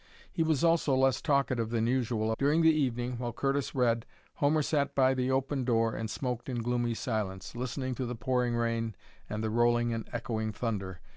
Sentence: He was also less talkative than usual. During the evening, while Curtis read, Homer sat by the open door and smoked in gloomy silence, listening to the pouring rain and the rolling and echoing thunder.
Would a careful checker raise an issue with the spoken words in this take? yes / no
no